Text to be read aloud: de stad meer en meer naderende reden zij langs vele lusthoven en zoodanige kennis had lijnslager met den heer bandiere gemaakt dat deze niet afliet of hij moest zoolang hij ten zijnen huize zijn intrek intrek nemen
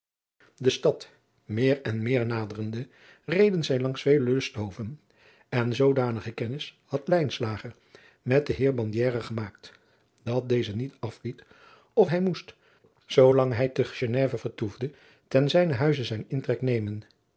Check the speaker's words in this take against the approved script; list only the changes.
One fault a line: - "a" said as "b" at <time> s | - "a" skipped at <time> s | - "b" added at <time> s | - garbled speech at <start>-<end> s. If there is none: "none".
- "te geneve vertoefde" added at 13.7 s
- "intrek" skipped at 16.6 s